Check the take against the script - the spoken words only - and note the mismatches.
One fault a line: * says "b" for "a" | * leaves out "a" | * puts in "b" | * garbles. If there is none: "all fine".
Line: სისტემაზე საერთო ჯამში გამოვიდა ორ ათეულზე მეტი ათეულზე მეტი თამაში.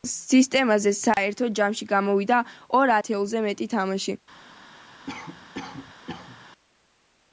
* leaves out "ათეულზე მეტი"